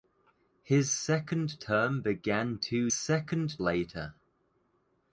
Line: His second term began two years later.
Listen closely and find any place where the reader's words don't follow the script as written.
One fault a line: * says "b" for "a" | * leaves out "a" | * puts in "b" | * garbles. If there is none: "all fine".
* says "second" for "years"